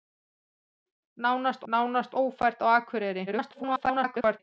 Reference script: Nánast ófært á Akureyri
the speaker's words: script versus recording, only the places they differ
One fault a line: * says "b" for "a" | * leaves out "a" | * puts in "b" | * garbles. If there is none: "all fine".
* puts in "nánast"
* garbles